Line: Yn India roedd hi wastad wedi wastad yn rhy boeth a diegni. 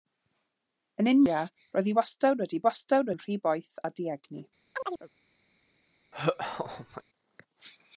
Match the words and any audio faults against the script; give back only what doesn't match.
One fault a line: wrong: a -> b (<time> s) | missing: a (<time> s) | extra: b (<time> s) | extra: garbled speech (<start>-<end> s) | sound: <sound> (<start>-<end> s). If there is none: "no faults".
sound: chirp (4.7-5.1 s)
sound: laugh (6.1-7.0 s)